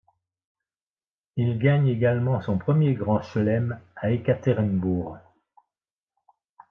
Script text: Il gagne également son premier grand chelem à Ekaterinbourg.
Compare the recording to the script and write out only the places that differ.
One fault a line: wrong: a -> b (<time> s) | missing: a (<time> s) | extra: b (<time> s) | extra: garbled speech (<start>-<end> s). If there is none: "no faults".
no faults